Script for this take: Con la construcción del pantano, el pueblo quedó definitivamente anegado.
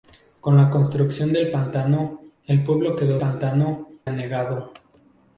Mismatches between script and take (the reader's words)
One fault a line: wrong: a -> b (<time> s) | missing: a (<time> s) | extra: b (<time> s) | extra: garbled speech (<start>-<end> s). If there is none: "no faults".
wrong: definitivamente -> pantano (3.2 s)